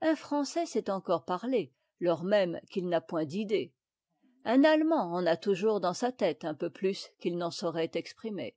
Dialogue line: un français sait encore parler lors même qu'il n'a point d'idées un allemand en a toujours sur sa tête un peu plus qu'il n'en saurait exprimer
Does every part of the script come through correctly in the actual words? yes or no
no